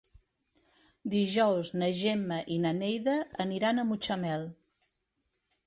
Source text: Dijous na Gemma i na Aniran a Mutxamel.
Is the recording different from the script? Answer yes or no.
yes